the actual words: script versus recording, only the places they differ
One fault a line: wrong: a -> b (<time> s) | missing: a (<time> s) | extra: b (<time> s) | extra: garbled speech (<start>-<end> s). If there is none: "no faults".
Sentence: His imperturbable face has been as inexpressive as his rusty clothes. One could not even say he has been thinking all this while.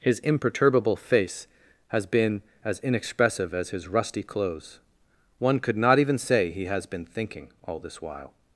no faults